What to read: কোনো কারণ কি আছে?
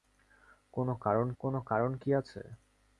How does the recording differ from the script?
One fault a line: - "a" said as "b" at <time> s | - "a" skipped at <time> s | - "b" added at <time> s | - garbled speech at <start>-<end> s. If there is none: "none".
- "কোনো কারণ" added at 1.4 s